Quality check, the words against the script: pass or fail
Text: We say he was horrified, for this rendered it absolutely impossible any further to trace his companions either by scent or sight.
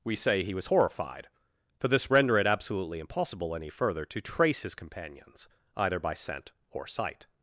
fail